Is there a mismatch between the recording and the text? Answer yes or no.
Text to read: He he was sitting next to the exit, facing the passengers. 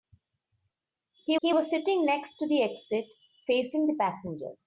no